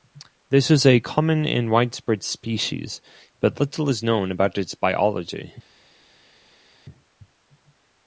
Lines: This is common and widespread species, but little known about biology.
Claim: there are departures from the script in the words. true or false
true